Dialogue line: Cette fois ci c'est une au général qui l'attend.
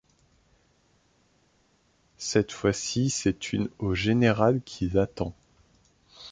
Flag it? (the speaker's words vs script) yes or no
no